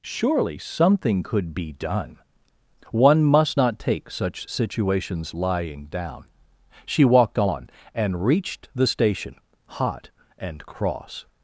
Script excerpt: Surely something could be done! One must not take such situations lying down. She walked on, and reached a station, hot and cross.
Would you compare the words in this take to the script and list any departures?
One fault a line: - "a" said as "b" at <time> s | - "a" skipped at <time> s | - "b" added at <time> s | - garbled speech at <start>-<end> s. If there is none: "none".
- "a" said as "the" at 8.7 s